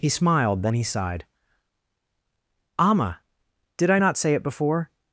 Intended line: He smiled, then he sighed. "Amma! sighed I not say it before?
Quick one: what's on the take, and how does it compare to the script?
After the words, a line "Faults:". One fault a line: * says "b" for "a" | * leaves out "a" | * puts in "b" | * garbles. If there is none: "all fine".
He smiled, then he sighed. "Amma! did I not say it before?
Faults:
* says "did" for "sighed"